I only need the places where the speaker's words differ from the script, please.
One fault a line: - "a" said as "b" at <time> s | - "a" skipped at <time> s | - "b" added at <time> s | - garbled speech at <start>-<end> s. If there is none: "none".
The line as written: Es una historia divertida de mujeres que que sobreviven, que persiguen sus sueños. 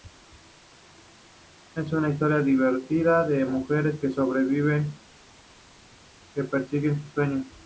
- "que" skipped at 4.1 s